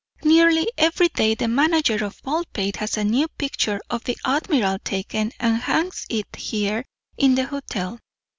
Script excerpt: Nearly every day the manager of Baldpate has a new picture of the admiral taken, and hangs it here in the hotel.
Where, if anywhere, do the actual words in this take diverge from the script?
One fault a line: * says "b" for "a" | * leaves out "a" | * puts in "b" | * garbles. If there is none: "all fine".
all fine